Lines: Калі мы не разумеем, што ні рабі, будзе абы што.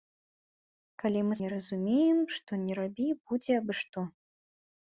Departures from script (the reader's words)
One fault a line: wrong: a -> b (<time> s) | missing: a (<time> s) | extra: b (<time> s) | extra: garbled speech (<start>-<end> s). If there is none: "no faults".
no faults